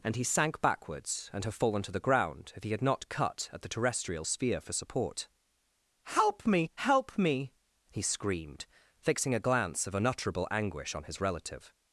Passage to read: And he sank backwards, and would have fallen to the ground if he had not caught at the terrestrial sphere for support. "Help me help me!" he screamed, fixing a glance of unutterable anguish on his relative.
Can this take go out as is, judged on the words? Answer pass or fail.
fail